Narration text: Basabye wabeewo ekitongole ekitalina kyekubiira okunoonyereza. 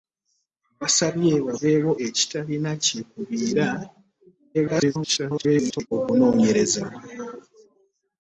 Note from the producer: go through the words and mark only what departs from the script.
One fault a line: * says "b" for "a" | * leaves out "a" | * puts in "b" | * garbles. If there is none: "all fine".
* leaves out "ekitongole"
* garbles